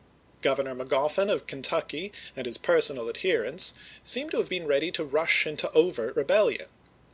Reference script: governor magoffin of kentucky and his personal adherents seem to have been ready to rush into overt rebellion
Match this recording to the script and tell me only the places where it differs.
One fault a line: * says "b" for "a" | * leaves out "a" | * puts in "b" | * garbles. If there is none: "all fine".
all fine